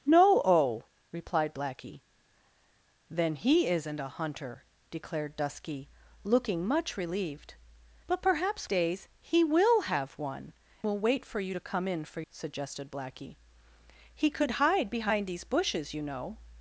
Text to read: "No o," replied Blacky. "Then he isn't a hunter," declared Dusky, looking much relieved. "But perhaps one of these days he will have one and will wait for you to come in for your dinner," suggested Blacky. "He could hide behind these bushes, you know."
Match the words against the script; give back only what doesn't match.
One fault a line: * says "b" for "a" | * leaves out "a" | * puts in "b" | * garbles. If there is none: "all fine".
* leaves out "one of these"
* leaves out "and"
* leaves out "your dinner"